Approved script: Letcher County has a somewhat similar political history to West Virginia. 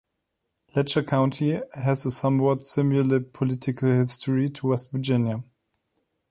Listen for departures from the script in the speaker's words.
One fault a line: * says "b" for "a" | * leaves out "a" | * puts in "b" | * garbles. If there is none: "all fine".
all fine